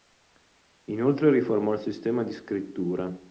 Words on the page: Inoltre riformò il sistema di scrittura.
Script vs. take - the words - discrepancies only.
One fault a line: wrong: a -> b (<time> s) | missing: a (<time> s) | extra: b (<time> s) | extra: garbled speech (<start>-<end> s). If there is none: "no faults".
no faults